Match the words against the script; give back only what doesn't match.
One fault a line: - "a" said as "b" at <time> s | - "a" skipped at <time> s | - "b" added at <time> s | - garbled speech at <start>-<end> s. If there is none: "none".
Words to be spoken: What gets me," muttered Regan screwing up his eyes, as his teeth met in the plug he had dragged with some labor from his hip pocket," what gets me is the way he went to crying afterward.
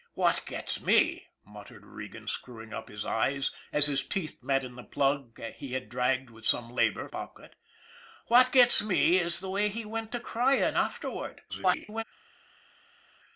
- "from his hip" skipped at 7.1 s
- garbled speech at 11.5-12.0 s